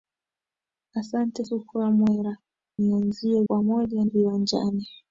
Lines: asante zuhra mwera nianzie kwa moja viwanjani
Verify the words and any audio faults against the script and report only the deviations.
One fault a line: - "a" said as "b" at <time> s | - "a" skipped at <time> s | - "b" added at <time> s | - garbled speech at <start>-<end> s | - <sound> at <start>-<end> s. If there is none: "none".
none